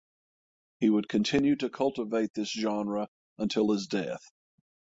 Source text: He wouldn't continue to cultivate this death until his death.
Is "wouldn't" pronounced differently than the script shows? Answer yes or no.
yes